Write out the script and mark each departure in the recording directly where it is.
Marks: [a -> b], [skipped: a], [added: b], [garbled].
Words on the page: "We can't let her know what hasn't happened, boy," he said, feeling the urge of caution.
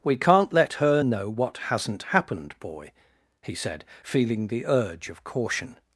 "We can't let her know what hasn't happened, boy," he said, feeling the urge of caution.